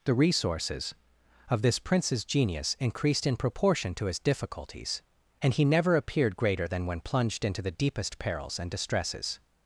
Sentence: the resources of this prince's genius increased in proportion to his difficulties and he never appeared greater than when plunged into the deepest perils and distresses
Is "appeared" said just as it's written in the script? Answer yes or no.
yes